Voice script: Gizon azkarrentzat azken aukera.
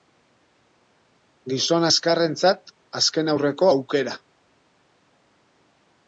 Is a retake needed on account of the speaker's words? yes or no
yes